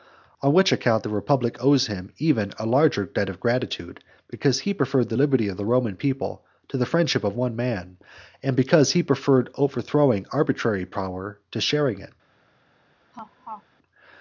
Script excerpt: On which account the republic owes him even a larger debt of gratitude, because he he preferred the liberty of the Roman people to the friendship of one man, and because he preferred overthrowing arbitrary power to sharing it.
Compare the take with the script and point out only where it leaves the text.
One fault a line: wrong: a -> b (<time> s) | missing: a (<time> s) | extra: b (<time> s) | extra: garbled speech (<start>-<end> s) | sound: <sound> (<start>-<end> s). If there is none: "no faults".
missing: he (4.7 s)
sound: laugh (13.1-13.6 s)